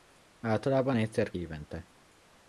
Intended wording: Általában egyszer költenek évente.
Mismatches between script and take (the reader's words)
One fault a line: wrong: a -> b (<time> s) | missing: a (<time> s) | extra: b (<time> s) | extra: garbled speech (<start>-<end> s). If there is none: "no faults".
missing: költenek (1.3 s)